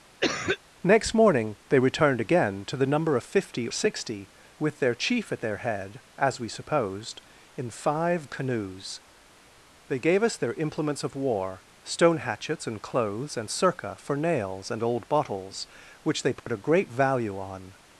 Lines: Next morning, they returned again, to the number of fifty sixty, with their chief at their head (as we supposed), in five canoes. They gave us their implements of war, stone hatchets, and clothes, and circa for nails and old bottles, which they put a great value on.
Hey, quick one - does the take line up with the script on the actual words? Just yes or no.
yes